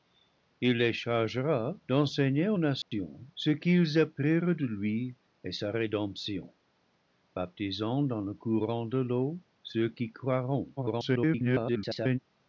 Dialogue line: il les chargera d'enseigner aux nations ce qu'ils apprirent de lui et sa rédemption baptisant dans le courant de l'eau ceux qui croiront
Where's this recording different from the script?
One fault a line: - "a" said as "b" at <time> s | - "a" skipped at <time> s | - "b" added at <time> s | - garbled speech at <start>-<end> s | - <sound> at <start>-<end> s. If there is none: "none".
- dropout at 2.8-2.9 s
- garbled speech at 10.8-12.2 s